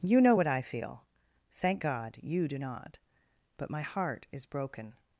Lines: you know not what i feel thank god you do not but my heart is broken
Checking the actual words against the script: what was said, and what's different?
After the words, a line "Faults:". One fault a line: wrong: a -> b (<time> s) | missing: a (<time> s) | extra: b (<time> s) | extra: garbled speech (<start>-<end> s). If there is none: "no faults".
you know what i feel thank god you do not but my heart is broken
Faults:
missing: not (0.3 s)